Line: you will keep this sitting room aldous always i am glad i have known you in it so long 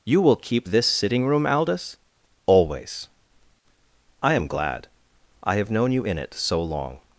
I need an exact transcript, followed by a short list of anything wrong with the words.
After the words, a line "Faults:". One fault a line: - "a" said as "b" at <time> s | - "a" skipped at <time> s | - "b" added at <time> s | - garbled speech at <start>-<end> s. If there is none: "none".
you will keep this sitting room aldous always i am glad i have known you in it so long
Faults:
none